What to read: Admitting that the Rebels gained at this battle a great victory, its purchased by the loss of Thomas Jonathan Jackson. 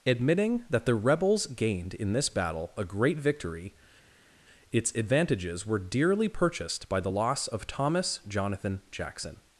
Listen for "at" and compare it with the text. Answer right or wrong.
wrong